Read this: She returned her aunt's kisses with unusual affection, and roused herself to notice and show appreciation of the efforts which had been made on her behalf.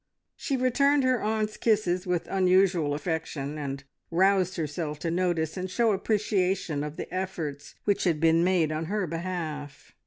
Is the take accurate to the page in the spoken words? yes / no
yes